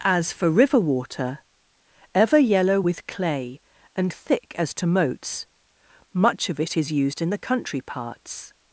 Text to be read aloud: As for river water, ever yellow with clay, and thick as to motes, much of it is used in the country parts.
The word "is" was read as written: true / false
true